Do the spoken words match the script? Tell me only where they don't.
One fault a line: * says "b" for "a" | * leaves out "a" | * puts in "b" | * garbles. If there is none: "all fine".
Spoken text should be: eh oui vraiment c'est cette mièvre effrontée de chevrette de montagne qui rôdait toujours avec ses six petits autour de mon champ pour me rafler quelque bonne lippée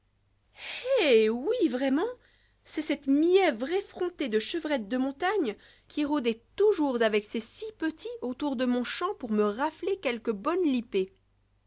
all fine